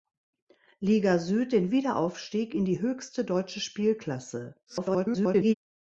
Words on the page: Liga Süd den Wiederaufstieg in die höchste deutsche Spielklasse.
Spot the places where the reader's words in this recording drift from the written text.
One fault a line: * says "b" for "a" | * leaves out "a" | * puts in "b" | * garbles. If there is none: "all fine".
* garbles